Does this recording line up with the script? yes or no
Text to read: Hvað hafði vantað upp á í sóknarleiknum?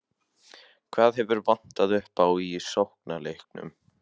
no